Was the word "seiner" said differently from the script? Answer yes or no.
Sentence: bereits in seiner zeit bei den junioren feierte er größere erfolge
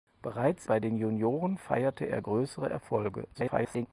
yes